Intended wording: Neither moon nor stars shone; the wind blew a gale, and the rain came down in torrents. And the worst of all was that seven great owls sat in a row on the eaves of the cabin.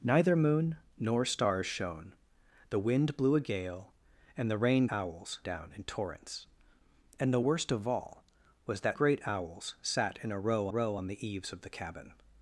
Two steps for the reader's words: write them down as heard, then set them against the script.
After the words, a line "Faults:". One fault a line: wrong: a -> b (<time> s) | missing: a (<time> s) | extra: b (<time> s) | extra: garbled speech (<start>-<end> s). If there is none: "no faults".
Neither moon nor stars shone; the wind blew a gale, and the rain owls down in torrents. And the worst of all was that great owls sat in a row row on the eaves of the cabin.
Faults:
wrong: came -> owls (4.9 s)
missing: seven (9.0 s)
extra: row (10.7 s)